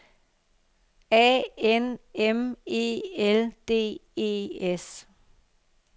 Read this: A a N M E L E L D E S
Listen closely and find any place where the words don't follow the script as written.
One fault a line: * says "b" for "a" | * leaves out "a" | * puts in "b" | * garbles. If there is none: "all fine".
* leaves out "a"
* leaves out "E L"